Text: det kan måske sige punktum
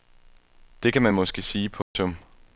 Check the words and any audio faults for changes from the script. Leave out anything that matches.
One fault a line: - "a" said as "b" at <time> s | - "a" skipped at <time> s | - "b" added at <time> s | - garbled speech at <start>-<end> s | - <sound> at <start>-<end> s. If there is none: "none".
- "man" added at 1.0 s
- dropout at 1.8-2.0 s